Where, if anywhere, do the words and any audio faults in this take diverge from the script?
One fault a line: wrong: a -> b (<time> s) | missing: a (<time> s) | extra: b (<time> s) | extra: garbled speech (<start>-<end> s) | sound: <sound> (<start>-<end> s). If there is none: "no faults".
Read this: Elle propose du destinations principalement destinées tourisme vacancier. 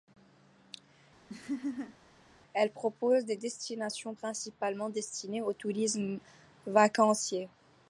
sound: laugh (1.3-2.0 s)
wrong: du -> des (3.2 s)
extra: au (5.4 s)